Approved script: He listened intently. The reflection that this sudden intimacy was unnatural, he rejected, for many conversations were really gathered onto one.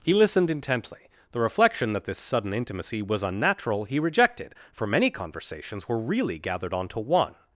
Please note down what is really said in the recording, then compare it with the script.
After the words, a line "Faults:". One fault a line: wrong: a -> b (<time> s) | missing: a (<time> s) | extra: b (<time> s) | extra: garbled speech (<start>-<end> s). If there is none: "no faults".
He listened intently. The reflection that this sudden intimacy was unnatural, he rejected, for many conversations were really gathered onto one.
Faults:
no faults